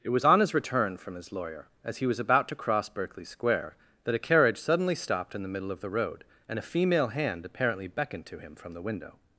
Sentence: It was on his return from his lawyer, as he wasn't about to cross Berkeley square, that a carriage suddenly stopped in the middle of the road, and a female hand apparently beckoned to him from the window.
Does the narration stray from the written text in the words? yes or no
yes